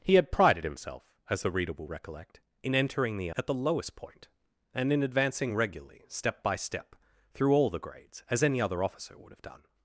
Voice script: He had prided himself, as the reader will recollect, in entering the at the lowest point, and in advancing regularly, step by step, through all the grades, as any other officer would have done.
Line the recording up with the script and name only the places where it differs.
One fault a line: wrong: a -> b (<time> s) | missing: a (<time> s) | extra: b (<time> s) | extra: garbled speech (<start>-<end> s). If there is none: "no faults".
no faults